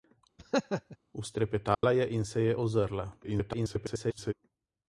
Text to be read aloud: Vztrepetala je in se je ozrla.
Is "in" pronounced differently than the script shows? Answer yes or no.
no